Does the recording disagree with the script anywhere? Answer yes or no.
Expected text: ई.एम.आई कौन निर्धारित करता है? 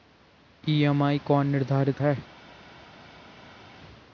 yes